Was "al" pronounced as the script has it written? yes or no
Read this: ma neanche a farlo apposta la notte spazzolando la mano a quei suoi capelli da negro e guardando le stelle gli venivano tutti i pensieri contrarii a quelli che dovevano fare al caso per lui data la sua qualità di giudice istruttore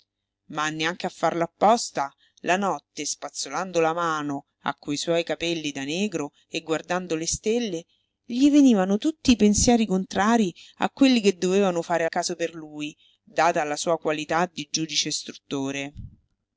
no